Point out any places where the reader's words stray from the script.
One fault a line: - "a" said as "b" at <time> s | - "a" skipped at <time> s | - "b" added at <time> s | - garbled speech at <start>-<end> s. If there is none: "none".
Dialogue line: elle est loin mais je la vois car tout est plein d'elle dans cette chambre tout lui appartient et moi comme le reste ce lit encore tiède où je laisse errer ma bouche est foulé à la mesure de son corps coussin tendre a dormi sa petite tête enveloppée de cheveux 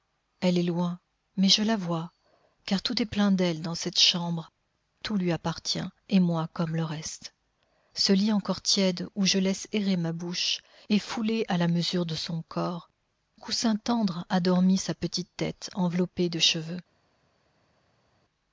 none